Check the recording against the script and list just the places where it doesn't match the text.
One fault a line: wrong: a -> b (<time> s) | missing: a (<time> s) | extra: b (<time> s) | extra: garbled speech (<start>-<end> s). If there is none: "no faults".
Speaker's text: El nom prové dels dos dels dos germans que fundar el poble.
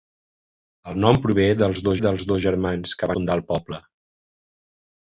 no faults